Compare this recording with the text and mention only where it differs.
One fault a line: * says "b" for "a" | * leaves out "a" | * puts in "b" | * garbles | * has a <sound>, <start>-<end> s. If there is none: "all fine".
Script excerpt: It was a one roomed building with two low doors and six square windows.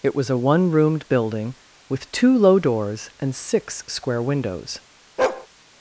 * has a bark, 5.2-5.5 s